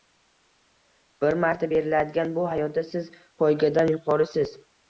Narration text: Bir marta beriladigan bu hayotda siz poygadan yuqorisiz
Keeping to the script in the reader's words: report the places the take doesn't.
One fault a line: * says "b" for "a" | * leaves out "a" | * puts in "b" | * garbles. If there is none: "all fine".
all fine